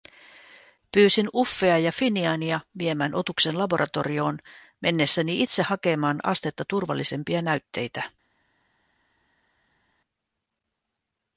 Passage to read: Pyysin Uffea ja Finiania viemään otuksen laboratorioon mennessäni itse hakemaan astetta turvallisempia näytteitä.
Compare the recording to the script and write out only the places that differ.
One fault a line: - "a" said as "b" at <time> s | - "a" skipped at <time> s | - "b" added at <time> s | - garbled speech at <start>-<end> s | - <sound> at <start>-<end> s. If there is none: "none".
none